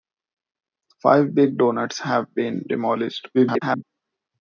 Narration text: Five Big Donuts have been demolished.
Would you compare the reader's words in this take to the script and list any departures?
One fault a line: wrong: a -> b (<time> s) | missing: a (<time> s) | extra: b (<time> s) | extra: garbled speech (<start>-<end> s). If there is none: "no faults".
extra: garbled speech (3.3-3.8 s)